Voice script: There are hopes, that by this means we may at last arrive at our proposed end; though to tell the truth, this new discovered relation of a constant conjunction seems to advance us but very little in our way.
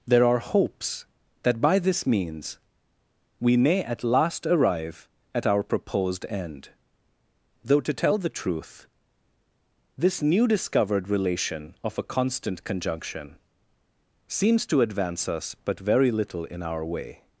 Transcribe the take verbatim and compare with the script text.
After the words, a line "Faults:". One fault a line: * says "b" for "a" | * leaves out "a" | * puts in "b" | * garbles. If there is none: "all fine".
There are hopes, that by this means we may at last arrive at our proposed end; though to tell the truth, this new discovered relation of a constant conjunction seems to advance us but very little in our way.
Faults:
all fine